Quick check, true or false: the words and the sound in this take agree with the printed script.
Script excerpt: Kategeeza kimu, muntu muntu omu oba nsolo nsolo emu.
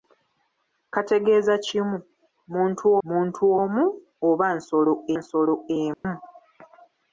false